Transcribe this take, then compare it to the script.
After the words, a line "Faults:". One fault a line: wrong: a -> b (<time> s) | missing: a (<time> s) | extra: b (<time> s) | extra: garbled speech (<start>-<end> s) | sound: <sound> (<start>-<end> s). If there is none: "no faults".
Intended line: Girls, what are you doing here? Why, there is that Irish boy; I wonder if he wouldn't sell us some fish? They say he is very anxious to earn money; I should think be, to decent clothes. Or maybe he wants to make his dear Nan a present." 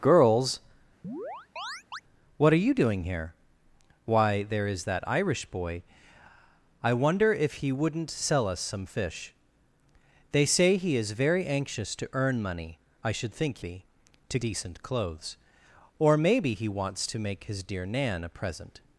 Girls, what are you doing here? Why, there is that Irish boy; I wonder if he wouldn't sell us some fish? They say he is very anxious to earn money; I should think be, to decent clothes. Or maybe he wants to make his dear Nan a present."
Faults:
sound: chirp (1.0-2.0 s)